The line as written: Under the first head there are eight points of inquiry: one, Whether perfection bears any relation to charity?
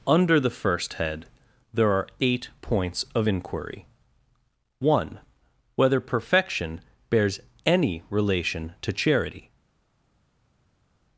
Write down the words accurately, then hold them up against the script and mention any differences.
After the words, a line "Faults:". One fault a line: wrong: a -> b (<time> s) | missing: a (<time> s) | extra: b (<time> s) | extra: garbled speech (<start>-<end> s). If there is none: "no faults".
Under the first head there are eight points of inquiry: one, Whether perfection bears any relation to charity?
Faults:
no faults